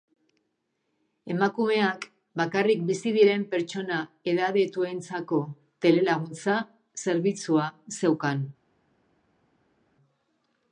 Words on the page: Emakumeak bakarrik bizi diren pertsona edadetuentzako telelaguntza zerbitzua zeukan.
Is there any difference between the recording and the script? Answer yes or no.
no